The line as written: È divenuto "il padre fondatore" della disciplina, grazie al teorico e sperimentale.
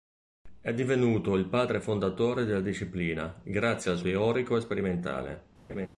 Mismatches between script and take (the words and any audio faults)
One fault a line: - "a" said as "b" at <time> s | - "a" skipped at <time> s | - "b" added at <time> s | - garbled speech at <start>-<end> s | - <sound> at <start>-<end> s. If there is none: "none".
- laugh at 5.7-5.9 s